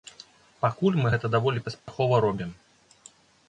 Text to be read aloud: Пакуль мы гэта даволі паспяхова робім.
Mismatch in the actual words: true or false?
false